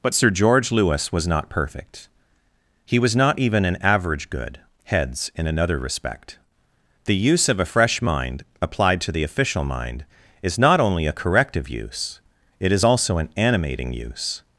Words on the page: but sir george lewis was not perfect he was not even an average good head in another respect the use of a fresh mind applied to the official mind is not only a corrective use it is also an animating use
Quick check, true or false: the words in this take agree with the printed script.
false